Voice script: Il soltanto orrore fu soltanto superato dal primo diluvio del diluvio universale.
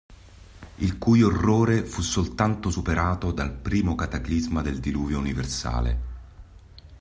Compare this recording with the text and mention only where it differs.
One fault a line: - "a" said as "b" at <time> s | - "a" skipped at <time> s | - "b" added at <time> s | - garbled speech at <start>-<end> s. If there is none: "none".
- "soltanto" said as "cui" at 1.0 s
- "diluvio" said as "cataclisma" at 4.0 s